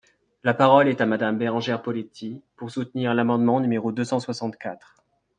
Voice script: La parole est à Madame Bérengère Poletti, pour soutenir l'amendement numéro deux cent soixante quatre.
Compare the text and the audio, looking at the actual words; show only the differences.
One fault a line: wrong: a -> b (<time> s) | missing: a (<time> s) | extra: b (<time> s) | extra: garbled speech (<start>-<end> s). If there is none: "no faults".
no faults